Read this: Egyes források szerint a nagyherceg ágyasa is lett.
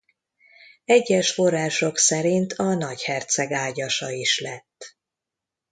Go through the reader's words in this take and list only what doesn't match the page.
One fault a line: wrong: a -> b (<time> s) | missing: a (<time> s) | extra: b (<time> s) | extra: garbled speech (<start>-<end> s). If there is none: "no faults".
no faults